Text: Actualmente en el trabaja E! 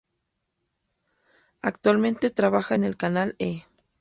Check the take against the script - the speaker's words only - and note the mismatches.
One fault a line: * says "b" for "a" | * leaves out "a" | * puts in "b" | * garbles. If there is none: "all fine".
* puts in "trabaja"
* says "canal" for "trabaja"